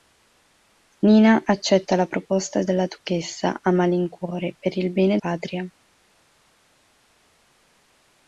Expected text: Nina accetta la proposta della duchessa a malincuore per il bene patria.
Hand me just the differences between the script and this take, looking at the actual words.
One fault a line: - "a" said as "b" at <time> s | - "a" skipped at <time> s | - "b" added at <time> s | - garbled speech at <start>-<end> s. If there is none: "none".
none